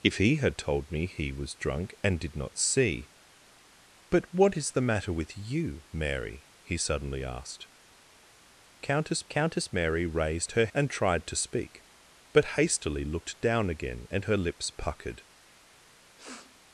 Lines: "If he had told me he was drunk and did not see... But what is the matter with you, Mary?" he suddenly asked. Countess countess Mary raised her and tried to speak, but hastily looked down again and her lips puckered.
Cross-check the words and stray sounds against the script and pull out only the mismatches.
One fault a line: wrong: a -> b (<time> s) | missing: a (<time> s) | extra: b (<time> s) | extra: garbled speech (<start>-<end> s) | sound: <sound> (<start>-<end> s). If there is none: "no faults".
sound: sniff (16.2-16.6 s)